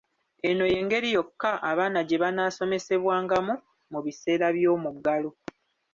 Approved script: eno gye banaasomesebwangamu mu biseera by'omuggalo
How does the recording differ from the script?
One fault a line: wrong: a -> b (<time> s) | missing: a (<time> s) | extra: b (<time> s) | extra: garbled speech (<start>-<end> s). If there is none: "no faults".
extra: y'engeri yokka abaana (0.7 s)